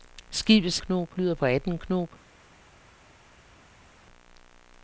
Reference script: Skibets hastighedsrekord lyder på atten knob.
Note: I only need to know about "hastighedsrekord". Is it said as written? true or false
false